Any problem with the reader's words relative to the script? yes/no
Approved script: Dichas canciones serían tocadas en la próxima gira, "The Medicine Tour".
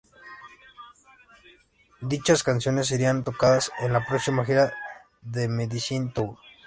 no